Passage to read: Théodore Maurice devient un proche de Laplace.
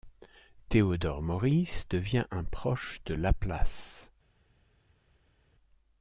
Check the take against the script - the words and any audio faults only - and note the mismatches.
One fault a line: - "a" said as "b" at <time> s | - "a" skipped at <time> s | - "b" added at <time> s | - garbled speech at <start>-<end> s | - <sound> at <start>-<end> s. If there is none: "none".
none